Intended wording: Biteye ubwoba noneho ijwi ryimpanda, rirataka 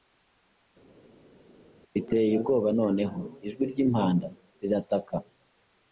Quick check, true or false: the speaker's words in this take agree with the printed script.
true